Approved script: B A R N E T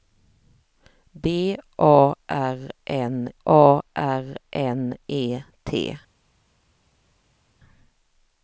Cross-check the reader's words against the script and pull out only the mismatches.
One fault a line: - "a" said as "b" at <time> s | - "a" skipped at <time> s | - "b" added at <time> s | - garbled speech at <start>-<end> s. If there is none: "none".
- "A R N" added at 3.4 s